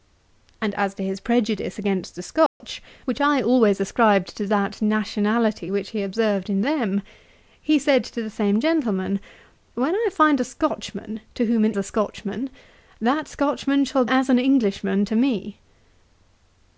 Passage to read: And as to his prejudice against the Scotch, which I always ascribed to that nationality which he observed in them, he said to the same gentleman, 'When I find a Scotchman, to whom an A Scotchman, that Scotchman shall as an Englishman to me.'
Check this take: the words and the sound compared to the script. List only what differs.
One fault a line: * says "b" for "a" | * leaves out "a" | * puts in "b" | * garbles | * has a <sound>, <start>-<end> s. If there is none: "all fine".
* has a dropout, 2.5-2.6 s